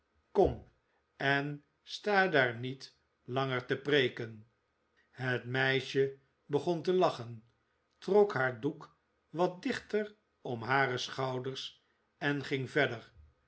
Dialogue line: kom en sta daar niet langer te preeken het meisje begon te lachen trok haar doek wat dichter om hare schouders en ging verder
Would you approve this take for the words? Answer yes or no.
yes